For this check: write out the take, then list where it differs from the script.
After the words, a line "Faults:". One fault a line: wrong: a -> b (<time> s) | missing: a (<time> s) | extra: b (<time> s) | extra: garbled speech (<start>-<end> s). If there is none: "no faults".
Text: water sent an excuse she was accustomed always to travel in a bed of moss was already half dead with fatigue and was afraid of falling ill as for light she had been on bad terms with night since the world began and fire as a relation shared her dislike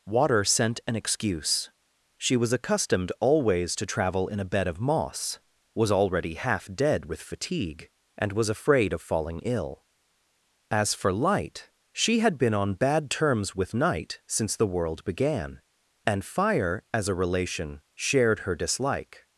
water sent an excuse she was accustomed always to travel in a bed of moss was already half dead with fatigue and was afraid of falling ill as for light she had been on bad terms with night since the world began and fire as a relation shared her dislike
Faults:
no faults